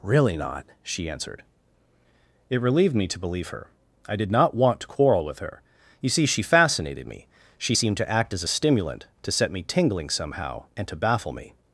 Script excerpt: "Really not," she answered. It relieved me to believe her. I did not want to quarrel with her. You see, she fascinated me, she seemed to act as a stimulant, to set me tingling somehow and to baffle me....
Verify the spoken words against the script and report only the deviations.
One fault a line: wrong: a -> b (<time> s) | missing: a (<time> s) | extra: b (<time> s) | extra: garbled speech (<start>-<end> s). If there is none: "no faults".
no faults